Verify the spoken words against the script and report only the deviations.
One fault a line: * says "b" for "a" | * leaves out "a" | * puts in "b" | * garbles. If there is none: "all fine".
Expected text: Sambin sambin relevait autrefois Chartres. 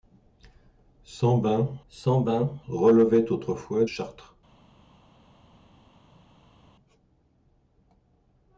all fine